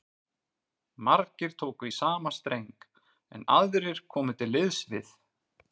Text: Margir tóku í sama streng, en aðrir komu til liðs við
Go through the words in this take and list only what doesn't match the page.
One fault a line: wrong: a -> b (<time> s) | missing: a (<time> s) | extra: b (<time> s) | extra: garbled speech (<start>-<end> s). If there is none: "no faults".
no faults